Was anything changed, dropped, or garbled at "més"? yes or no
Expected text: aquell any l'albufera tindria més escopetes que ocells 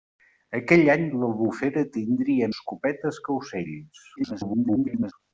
yes